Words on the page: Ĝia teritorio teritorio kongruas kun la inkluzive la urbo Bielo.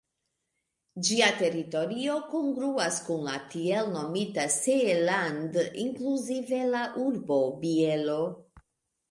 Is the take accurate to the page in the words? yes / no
no